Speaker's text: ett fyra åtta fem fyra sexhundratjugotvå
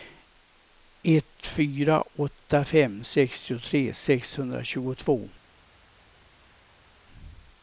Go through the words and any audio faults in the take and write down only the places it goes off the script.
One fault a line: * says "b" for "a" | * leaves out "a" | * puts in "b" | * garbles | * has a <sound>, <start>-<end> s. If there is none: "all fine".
* says "sextiotre" for "fyra"